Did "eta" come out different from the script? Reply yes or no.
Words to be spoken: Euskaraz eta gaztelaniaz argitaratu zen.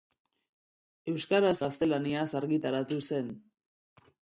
yes